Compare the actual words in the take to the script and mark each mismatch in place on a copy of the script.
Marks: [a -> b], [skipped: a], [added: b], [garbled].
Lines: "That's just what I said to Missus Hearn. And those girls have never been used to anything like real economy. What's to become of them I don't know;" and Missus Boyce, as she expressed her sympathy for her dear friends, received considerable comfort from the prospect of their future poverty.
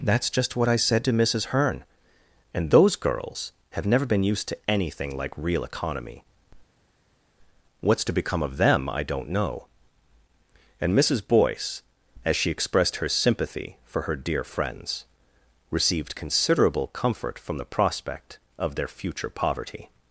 "That's just what I said to Missus Hearn. And those girls have never been used to anything like real economy. What's to become of them I don't know;" and Missus Boyce, as she expressed her sympathy for her dear friends, received considerable comfort from the prospect of their future poverty.